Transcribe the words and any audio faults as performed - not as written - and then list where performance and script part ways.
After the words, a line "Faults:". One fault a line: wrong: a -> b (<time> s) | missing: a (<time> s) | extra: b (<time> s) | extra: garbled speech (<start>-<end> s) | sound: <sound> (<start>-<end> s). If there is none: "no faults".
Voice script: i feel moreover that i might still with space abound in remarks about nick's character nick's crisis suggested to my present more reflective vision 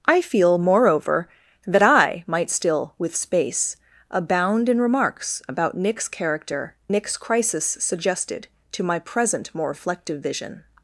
i feel moreover that i might still with space abound in remarks about nick's character nick's crisis suggested to my present more reflective vision
Faults:
no faults